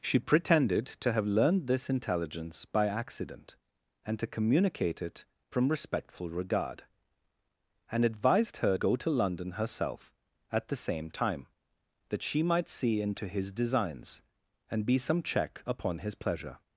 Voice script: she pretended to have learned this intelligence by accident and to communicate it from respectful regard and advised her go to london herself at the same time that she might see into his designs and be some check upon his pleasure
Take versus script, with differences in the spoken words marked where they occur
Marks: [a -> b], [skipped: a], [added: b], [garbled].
she pretended to have learned this intelligence by accident and to communicate it from respectful regard and advised her go to london herself at the same time that she might see into his designs and be some check upon his pleasure